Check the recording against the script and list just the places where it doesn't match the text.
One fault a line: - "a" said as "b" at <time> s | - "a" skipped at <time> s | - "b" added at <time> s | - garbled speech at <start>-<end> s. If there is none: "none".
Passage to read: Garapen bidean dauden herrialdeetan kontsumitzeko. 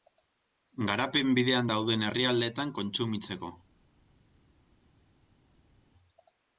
none